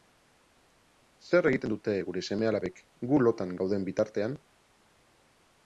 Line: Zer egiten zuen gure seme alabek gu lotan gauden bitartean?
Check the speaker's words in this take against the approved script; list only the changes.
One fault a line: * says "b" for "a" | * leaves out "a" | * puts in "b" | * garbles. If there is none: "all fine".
* says "dute" for "zuen"